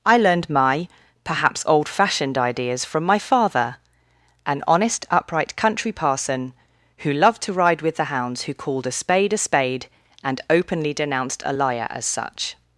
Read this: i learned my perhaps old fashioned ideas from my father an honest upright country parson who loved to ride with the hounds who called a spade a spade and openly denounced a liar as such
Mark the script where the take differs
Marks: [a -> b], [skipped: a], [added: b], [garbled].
i learned my perhaps old fashioned ideas from my father an honest upright country parson who loved to ride with the hounds who called a spade a spade and openly denounced a liar as such